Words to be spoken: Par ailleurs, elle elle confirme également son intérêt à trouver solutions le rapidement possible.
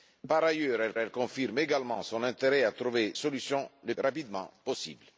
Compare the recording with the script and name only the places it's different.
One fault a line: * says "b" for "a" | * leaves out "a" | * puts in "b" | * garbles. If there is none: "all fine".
all fine